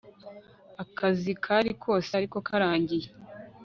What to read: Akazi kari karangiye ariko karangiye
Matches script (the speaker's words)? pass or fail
fail